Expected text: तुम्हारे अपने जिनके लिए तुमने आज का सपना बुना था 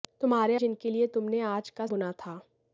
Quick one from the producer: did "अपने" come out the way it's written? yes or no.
no